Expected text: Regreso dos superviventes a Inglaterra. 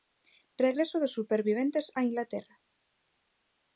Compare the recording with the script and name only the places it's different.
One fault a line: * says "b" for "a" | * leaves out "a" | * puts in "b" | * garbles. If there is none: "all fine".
all fine